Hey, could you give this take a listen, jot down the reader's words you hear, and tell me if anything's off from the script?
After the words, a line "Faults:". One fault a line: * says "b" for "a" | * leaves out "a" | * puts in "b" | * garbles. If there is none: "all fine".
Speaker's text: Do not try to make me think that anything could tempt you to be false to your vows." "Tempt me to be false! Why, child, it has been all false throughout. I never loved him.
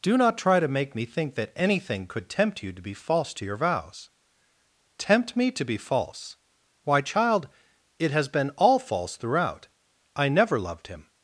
Do not try to make me think that anything could tempt you to be false to your vows." "Tempt me to be false! Why, child, it has been all false throughout. I never loved him.
Faults:
all fine